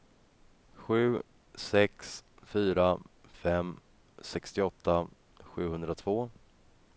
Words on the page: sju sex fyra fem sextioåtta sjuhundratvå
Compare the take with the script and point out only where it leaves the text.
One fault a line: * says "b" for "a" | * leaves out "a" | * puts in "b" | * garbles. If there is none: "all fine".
all fine